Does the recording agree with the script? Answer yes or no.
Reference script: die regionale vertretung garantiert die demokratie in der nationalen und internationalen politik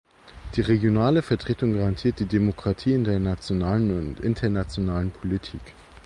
yes